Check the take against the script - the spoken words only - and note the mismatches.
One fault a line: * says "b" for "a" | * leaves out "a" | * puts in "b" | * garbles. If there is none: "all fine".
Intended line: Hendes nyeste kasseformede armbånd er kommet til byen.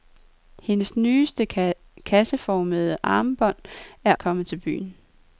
all fine